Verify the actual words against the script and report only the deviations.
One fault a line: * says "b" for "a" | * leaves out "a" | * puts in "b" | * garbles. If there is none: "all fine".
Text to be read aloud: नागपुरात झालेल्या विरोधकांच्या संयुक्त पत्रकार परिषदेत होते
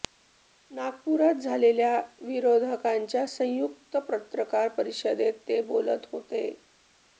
* puts in "ते बोलत"